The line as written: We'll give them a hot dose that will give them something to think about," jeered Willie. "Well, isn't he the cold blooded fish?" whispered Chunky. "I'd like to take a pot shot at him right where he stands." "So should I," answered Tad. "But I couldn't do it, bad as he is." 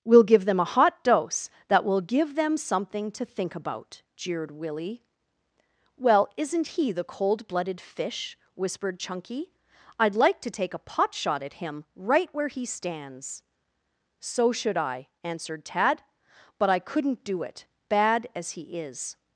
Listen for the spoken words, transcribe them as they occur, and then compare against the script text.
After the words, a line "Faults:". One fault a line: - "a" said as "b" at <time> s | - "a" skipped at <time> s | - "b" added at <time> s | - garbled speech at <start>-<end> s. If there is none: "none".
We'll give them a hot dose that will give them something to think about," jeered Willie. "Well, isn't he the cold blooded fish?" whispered Chunky. "I'd like to take a pot shot at him right where he stands." "So should I," answered Tad. "But I couldn't do it, bad as he is."
Faults:
none